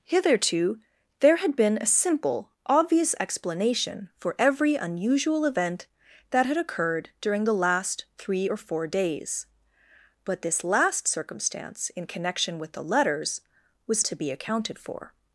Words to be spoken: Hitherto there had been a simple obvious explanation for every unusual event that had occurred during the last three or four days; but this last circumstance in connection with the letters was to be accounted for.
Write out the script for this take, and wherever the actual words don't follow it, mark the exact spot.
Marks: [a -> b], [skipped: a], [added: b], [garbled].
Hitherto there had been a simple obvious explanation for every unusual event that had occurred during the last three or four days; but this last circumstance in connection with the letters was to be accounted for.